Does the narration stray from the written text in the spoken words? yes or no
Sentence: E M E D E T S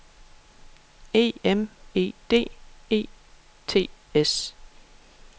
no